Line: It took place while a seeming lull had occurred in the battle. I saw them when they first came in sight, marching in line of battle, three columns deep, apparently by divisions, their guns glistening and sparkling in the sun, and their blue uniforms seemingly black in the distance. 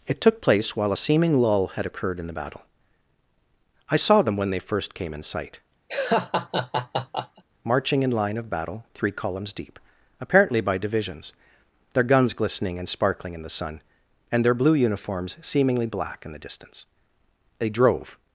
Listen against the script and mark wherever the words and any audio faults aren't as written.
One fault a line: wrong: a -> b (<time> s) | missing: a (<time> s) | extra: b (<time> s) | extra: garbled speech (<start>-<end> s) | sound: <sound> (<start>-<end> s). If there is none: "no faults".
sound: laugh (5.9-7.4 s)
extra: They drove (17.6 s)